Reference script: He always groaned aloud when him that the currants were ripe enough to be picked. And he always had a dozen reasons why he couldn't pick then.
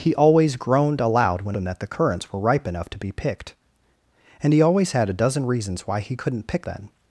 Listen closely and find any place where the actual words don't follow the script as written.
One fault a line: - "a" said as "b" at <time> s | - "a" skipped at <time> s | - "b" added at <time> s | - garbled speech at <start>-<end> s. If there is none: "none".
none